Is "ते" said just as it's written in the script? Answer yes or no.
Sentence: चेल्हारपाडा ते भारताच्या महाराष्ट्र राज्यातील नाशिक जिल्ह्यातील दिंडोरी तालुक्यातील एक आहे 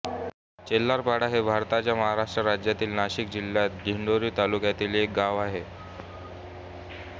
no